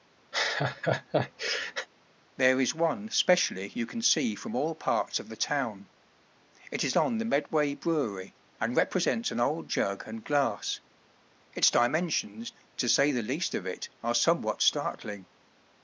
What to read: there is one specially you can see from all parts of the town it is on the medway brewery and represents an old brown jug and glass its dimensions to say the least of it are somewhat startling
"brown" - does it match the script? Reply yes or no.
no